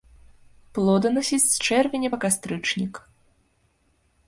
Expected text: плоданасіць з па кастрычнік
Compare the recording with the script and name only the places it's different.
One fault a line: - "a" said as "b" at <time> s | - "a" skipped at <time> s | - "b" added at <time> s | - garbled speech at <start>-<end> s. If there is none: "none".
- "чэрвеня" added at 1.7 s